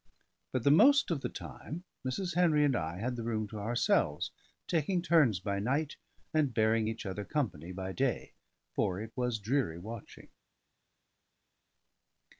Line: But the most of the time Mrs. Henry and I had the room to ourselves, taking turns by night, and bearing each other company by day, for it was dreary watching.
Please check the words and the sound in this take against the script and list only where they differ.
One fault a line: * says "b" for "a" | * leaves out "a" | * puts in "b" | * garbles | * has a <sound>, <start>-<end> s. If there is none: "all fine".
all fine